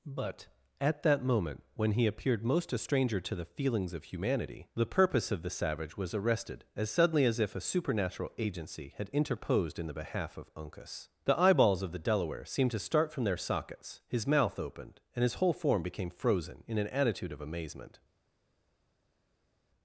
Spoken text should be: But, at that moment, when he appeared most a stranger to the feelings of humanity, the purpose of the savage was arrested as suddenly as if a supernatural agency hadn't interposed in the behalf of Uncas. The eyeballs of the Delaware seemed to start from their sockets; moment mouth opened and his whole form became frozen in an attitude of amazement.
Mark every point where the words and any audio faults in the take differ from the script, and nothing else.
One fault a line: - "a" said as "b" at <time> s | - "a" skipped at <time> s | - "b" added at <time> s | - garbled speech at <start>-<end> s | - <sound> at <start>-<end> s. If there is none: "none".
- "hadn't" said as "had" at 9.0 s
- "moment" said as "his" at 14.1 s